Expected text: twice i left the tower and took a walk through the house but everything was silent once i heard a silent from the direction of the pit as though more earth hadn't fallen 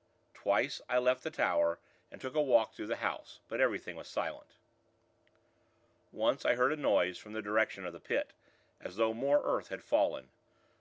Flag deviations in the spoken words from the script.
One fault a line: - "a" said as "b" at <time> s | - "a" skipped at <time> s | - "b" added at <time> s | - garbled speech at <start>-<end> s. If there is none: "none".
- "silent" said as "noise" at 6.8 s
- "hadn't" said as "had" at 9.7 s